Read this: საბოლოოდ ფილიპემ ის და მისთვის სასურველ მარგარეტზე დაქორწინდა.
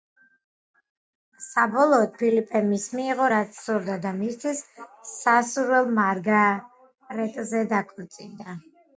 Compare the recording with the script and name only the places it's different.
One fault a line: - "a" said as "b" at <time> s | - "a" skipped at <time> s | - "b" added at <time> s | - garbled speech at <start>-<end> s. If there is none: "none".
- "მიიღო რაც სურდა" added at 3.0 s